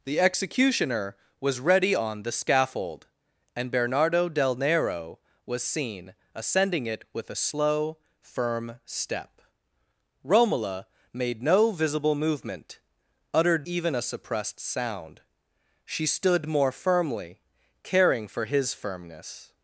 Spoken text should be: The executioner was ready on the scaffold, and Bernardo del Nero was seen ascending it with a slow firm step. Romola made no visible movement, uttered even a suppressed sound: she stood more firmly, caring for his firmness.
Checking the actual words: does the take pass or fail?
pass